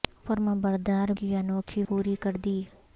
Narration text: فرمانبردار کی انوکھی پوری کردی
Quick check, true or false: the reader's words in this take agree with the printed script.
true